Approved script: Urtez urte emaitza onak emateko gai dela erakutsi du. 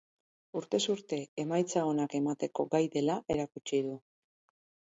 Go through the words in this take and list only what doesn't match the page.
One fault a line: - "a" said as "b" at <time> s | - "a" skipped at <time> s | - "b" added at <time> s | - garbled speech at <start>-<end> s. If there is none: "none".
none